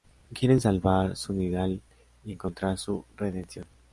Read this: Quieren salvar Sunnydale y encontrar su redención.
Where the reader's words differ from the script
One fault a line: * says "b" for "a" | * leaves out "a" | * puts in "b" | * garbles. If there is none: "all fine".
all fine